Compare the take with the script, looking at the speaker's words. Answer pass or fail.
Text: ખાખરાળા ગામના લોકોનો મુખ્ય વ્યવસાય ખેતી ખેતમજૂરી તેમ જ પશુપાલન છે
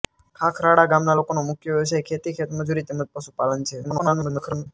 fail